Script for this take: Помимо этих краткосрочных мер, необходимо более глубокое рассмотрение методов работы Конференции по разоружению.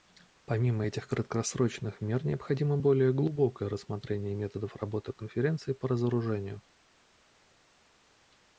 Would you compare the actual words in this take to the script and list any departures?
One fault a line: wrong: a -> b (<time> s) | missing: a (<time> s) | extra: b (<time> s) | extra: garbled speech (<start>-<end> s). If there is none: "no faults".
no faults